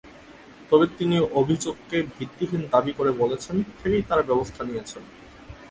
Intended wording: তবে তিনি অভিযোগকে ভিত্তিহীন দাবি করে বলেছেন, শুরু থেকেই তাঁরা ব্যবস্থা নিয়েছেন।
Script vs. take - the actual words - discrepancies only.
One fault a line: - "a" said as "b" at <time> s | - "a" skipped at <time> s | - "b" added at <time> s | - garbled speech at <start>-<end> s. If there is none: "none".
- "শুরু" skipped at 3.5 s